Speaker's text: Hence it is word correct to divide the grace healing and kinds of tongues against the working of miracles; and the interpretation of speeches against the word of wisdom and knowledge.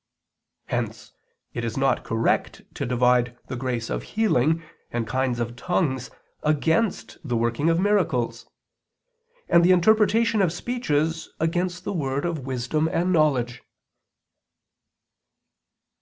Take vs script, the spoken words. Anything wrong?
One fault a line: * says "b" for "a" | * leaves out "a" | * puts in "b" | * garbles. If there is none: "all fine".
* says "not" for "word"
* puts in "of"